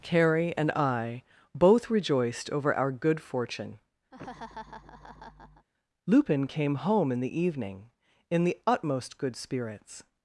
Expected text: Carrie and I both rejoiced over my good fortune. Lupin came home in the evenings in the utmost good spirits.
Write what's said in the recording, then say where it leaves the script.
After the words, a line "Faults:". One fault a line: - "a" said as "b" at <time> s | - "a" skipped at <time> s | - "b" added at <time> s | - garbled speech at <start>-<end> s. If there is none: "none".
Carrie and I both rejoiced over our good fortune. Lupin came home in the evening in the utmost good spirits.
Faults:
- "my" said as "our" at 2.7 s
- "evenings" said as "evening" at 7.4 s